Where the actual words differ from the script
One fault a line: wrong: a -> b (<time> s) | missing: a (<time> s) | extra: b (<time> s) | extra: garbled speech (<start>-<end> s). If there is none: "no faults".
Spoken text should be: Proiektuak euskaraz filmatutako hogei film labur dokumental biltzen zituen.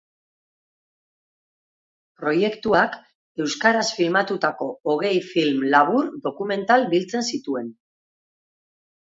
no faults